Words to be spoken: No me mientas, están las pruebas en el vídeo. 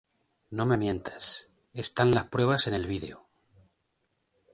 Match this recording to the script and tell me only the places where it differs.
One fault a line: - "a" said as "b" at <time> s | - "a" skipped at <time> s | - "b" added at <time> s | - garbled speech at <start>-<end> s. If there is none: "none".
none